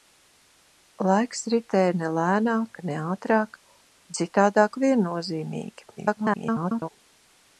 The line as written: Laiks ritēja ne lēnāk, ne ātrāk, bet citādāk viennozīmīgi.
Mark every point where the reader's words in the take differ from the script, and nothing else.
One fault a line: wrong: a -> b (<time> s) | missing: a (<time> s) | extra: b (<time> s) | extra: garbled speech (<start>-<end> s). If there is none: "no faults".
missing: bet (3.6 s)
extra: garbled speech (6.0-6.9 s)